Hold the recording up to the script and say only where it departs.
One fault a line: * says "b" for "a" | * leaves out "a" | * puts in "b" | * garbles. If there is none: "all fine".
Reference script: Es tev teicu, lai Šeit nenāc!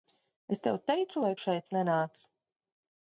all fine